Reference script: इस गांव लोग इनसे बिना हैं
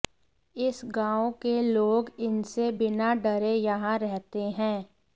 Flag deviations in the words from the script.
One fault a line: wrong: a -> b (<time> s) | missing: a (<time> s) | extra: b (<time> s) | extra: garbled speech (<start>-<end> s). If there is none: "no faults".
extra: के (1.4 s)
extra: डरे यहां रहते (3.2 s)